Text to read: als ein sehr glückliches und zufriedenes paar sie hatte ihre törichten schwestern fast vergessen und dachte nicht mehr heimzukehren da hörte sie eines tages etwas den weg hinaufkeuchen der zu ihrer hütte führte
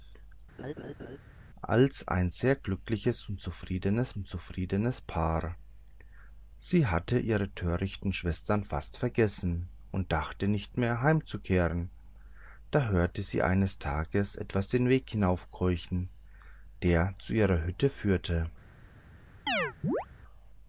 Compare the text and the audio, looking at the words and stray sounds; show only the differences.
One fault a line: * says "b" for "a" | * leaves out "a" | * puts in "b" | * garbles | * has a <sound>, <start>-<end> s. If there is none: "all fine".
* has a laugh, 0.6-1.2 s
* puts in "und zufriedenes"
* has a chirp, 19.5-20.1 s